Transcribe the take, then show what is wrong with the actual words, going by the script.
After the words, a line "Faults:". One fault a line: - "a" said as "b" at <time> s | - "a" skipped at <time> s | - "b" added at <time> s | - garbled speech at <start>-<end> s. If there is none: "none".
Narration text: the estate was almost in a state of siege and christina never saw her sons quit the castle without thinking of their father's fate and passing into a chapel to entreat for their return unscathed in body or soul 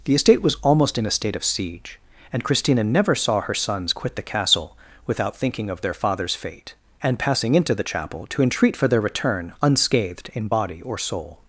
the estate was almost in a state of siege and christina never saw her sons quit the castle without thinking of their father's fate and passing into the chapel to entreat for their return unscathed in body or soul
Faults:
- "a" said as "the" at 7.7 s